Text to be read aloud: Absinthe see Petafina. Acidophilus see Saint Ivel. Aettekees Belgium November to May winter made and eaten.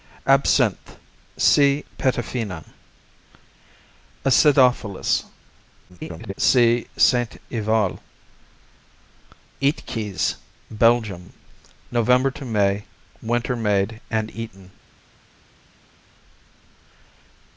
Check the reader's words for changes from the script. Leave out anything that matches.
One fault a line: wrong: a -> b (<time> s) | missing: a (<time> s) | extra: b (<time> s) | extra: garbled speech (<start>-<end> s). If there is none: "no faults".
extra: garbled speech (5.9-6.3 s)